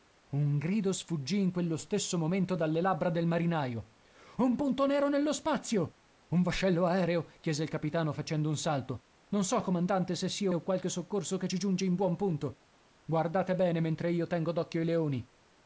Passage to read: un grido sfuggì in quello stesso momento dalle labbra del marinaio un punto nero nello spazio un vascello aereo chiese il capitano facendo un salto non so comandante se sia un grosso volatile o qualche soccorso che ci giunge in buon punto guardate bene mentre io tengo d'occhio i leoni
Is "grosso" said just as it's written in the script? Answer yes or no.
no